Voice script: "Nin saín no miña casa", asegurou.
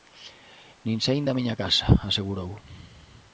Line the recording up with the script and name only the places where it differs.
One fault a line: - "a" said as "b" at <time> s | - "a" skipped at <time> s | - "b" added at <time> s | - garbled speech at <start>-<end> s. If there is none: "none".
- "no" said as "da" at 1.3 s